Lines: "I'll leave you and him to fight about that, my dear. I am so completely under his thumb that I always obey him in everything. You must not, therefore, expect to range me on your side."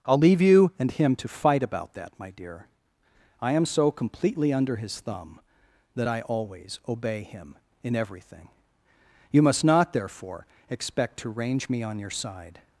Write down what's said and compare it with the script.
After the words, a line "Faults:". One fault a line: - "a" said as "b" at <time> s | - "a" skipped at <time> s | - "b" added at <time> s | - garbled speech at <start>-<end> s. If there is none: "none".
"I'll leave you and him to fight about that, my dear. I am so completely under his thumb that I always obey him in everything. You must not, therefore, expect to range me on your side."
Faults:
none